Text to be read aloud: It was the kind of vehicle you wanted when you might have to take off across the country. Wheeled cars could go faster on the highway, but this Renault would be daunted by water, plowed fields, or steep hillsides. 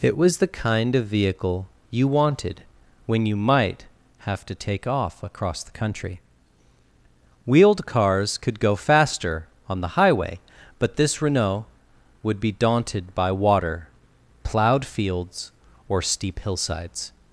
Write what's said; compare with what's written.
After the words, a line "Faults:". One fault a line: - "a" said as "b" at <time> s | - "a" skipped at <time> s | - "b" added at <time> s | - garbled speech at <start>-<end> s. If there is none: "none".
It was the kind of vehicle you wanted when you might have to take off across the country. Wheeled cars could go faster on the highway, but this Renault would be daunted by water, plowed fields, or steep hillsides.
Faults:
none